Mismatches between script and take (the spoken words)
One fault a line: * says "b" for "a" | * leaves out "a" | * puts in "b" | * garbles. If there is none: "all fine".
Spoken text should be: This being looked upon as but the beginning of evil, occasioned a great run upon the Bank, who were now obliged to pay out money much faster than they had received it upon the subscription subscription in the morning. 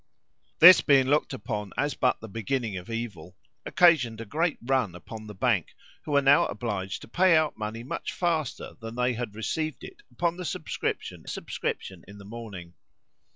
all fine